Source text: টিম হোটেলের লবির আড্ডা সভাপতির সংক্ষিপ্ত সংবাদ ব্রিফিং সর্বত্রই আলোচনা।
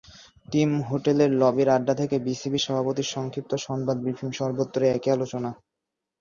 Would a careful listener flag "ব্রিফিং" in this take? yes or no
no